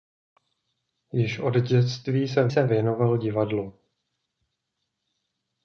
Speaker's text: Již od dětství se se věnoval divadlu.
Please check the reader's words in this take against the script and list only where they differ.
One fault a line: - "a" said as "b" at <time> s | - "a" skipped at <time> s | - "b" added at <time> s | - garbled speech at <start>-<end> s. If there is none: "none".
none